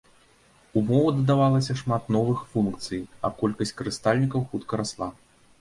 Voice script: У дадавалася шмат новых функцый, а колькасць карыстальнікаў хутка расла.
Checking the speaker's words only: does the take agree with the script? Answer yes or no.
no